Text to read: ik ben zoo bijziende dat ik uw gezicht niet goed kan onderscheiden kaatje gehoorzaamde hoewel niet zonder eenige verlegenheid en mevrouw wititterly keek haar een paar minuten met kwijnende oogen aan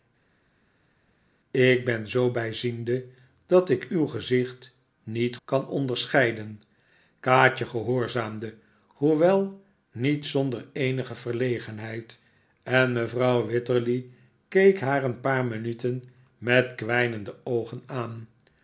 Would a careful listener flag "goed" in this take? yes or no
yes